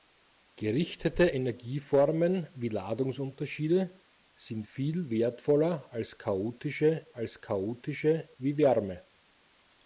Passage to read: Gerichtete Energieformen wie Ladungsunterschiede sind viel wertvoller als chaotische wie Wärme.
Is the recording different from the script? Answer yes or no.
yes